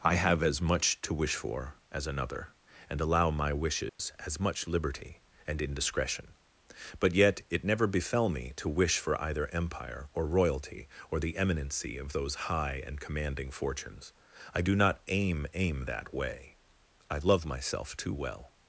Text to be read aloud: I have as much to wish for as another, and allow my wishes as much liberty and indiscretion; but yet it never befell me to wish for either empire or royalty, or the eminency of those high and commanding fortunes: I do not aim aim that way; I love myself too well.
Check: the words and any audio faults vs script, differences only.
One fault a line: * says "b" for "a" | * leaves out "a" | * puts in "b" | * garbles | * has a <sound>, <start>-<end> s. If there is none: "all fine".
* has a dropout, 3.9-4.0 s